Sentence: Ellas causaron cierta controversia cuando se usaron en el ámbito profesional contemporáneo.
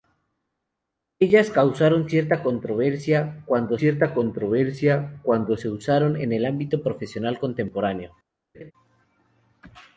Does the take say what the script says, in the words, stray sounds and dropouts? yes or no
no